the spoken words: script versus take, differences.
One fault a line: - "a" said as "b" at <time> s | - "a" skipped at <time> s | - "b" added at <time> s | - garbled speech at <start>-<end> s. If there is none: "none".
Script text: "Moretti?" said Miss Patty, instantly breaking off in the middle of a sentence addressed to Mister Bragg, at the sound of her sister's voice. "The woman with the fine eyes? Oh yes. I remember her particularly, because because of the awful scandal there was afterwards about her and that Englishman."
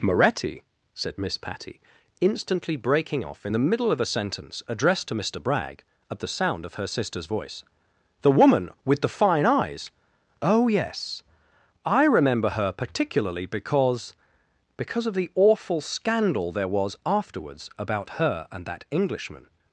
none